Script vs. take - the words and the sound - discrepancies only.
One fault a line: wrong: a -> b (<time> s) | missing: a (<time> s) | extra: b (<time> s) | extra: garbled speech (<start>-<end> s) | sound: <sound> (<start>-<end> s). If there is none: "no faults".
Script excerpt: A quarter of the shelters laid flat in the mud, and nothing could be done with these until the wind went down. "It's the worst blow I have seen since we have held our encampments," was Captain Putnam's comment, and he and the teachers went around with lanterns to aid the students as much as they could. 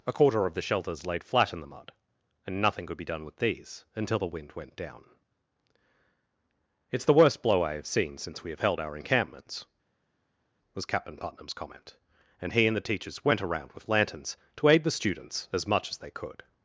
no faults